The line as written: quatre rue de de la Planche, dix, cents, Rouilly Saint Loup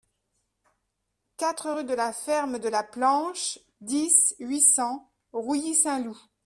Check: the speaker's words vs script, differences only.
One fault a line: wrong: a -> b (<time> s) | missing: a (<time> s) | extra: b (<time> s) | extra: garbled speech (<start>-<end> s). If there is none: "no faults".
extra: la Ferme (1.9 s)
extra: huit (4.4 s)